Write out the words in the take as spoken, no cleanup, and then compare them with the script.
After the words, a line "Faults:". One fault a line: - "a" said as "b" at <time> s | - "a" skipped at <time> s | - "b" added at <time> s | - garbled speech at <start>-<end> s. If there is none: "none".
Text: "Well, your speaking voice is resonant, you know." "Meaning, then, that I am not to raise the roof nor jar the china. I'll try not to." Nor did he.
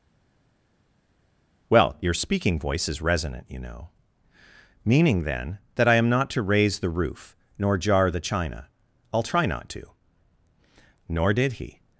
"Well, your speaking voice is resonant, you know." "Meaning, then, that I am not to raise the roof nor jar the china. I'll try not to." Nor did he.
Faults:
none